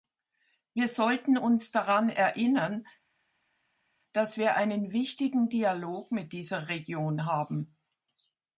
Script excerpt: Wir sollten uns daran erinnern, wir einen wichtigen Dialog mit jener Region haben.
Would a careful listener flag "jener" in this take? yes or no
yes